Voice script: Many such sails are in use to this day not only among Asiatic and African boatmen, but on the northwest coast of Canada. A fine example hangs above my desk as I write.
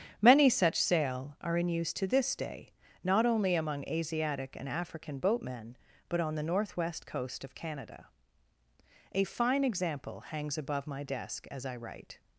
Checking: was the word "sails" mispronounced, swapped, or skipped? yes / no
yes